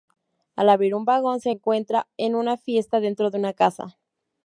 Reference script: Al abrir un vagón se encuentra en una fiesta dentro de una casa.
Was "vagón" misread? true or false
false